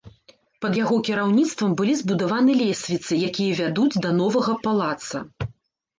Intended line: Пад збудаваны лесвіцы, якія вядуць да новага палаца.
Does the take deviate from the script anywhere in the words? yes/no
yes